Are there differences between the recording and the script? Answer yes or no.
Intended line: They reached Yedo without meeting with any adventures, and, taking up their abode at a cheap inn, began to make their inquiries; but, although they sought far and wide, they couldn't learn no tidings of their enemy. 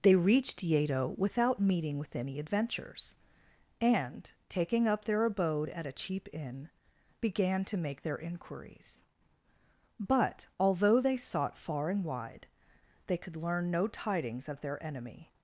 yes